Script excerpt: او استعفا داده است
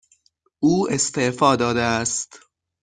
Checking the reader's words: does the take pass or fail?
pass